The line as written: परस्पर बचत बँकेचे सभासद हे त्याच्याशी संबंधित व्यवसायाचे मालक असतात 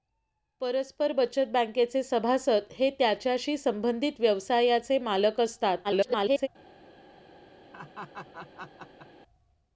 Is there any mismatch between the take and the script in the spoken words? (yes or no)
yes